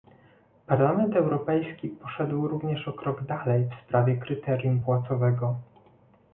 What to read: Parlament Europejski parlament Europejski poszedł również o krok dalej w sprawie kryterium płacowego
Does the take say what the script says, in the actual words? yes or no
no